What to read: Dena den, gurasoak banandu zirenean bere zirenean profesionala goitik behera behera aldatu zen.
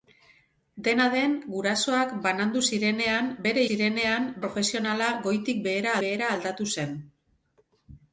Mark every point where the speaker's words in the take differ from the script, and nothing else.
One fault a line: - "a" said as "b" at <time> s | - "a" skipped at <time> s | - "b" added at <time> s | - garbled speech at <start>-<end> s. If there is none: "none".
none